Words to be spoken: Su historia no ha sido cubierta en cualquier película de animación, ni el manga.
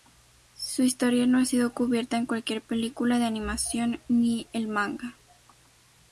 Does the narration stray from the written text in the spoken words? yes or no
no